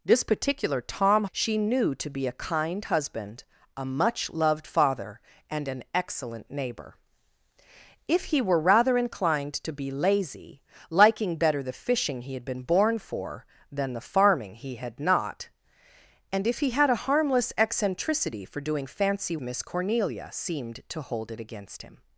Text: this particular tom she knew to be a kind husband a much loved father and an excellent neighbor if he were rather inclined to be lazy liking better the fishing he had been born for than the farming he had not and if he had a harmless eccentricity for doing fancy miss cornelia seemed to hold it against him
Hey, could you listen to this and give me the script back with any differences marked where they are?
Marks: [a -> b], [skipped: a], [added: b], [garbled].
this particular tom she knew to be a kind husband a much loved father and an excellent neighbor if he were rather inclined to be lazy liking better the fishing he had been born for than the farming he had not and if he had a harmless eccentricity for doing fancy miss cornelia seemed to hold it against him